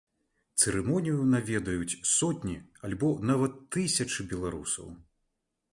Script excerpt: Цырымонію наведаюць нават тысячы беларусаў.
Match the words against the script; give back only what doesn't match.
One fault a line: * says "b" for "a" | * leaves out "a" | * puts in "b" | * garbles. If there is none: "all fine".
* puts in "сотні альбо"